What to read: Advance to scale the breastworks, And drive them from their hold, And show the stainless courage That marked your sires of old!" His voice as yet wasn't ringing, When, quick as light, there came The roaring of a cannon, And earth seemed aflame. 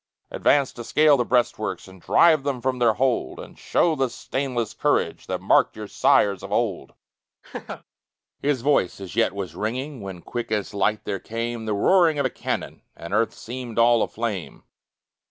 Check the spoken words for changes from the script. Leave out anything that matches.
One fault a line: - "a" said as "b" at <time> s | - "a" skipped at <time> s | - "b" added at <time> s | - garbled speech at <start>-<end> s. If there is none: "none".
- "wasn't" said as "was" at 9.3 s
- "all" added at 13.8 s